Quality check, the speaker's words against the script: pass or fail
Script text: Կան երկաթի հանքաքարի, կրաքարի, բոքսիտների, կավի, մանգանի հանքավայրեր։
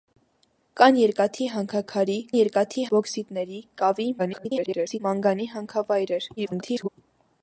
fail